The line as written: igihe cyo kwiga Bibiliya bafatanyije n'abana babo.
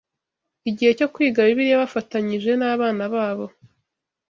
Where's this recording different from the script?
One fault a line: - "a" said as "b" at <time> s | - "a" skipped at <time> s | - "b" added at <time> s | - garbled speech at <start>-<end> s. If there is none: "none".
none